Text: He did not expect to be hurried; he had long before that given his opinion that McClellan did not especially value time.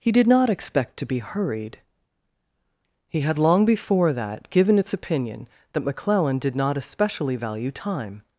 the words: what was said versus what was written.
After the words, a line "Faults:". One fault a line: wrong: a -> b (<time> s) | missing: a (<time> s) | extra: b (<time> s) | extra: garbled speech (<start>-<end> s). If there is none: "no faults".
He did not expect to be hurried; he had long before that given its opinion that McClellan did not especially value time.
Faults:
wrong: his -> its (4.8 s)